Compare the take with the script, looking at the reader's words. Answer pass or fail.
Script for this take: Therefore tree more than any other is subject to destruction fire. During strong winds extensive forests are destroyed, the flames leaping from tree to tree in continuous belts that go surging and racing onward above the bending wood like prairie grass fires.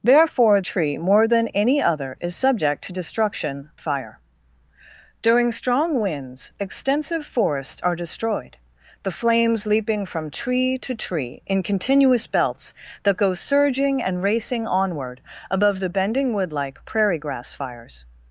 pass